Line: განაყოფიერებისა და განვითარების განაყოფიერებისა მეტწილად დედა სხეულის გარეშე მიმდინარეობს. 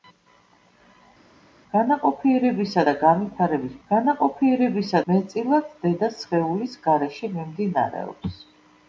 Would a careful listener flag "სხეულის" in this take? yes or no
no